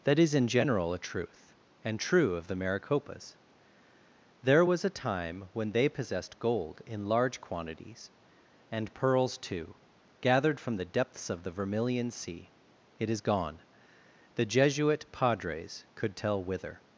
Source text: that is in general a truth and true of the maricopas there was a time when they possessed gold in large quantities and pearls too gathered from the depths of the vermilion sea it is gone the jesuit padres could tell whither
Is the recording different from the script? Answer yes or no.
no